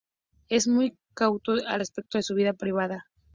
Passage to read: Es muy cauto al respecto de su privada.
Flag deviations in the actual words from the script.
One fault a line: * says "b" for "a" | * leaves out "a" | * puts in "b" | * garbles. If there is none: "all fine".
* puts in "vida"